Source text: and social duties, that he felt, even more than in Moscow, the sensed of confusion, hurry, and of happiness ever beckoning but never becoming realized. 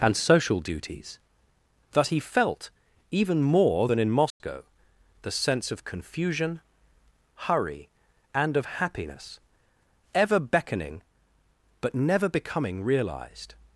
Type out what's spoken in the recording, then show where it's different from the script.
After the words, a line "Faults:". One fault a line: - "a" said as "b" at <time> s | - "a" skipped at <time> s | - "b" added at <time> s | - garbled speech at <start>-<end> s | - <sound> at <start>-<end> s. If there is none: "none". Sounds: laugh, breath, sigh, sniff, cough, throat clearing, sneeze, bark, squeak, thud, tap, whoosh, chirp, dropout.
and social duties, that he felt, even more than in Moscow, the sense of confusion, hurry, and of happiness ever beckoning but never becoming realized.
Faults:
- dropout at 4.3-4.4 s
- "sensed" said as "sense" at 5.3 s